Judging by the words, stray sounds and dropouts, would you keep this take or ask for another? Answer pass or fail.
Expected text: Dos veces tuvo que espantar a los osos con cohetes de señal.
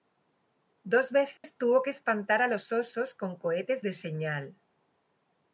fail